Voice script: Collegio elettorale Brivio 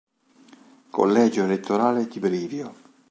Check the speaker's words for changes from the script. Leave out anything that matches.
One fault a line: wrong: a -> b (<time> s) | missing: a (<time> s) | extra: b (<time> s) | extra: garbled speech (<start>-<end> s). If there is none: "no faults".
extra: di (2.1 s)